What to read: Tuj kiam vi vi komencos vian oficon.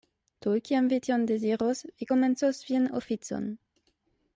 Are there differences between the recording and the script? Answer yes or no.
yes